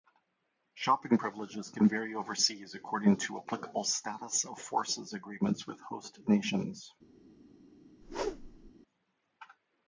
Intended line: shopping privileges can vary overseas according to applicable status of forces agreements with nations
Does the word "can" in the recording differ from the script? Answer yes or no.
no